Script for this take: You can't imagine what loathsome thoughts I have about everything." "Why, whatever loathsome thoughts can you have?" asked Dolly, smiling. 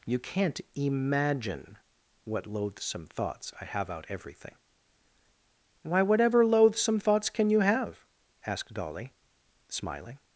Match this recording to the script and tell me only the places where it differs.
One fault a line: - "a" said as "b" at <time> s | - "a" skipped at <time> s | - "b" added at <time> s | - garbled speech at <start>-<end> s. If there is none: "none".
- "about" said as "out" at 3.9 s